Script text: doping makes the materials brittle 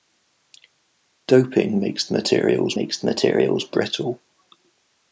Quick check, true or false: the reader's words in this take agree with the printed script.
false